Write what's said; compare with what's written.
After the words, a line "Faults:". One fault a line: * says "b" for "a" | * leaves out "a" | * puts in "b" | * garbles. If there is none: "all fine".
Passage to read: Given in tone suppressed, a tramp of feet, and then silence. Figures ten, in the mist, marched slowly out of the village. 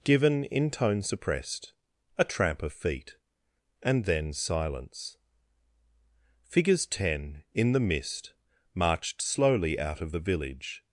Given in tone suppressed, a tramp of feet, and then silence. Figures ten, in the mist, marched slowly out of the village.
Faults:
all fine